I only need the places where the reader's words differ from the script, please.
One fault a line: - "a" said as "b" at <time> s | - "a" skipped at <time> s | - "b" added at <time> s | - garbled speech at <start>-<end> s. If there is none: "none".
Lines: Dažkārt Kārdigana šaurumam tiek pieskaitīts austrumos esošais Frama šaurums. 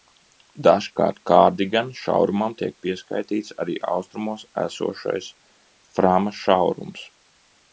- "arī" added at 3.6 s